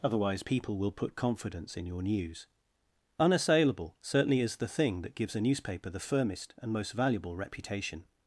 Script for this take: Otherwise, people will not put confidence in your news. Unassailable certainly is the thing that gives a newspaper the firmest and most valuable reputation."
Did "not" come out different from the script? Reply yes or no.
yes